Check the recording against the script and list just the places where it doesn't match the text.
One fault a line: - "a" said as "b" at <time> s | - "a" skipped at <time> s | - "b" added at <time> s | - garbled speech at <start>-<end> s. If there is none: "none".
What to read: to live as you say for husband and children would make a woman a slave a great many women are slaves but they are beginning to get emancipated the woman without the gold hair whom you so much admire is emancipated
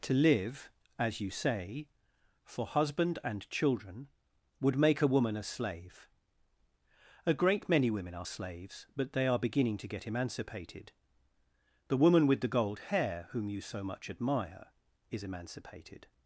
- "without" said as "with" at 12.3 s